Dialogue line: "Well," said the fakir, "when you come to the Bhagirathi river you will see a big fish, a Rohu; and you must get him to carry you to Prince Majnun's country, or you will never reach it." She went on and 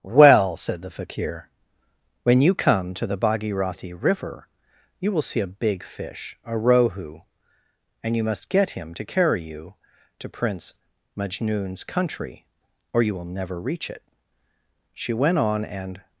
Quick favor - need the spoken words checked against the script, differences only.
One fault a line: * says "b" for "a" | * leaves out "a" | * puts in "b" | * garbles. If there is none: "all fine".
all fine